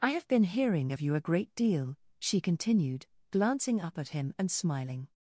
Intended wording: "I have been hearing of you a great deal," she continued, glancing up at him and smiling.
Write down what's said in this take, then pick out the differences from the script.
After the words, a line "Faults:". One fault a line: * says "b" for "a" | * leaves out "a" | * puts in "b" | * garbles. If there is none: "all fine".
"I have been hearing of you a great deal," she continued, glancing up at him and smiling.
Faults:
all fine